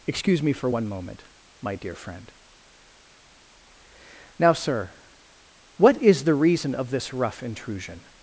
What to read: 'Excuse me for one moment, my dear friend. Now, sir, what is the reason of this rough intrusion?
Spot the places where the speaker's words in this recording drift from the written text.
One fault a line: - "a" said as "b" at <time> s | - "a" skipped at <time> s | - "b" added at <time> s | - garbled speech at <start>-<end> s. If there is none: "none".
none